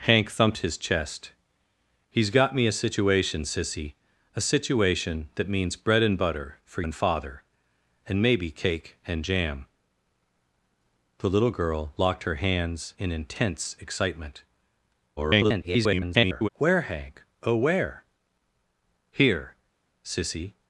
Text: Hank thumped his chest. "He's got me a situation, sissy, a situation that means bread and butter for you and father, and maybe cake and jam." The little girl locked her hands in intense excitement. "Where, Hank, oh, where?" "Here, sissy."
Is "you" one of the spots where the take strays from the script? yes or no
yes